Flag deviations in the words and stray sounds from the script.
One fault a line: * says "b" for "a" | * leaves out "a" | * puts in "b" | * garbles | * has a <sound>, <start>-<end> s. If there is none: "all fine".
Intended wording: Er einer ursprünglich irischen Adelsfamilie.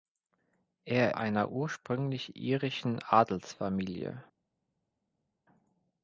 all fine